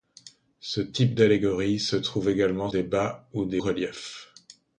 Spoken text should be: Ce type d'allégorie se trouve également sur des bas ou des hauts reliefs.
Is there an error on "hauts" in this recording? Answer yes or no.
yes